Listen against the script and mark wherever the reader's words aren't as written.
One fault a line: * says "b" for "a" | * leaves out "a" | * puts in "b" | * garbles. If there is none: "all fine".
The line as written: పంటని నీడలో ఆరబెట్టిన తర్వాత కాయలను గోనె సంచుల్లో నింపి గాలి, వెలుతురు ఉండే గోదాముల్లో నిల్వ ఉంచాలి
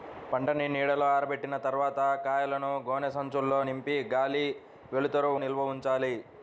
* leaves out "ఉండే గోదాముల్లో"